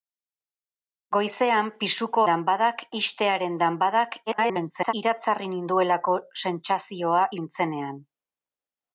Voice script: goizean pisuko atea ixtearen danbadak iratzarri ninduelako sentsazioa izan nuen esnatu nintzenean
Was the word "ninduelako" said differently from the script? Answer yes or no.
no